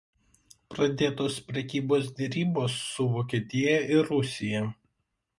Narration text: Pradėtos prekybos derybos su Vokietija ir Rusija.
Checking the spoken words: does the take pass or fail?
pass